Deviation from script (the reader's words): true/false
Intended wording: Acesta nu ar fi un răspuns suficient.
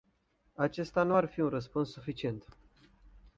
false